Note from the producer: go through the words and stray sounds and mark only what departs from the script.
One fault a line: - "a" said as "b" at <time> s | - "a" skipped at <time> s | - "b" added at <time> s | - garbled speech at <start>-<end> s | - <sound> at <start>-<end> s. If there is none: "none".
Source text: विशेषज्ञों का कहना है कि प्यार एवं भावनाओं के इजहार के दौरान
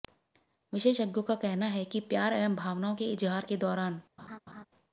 - laugh at 4.2-4.7 s